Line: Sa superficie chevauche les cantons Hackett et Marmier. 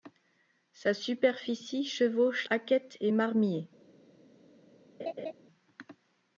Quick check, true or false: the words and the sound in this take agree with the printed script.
false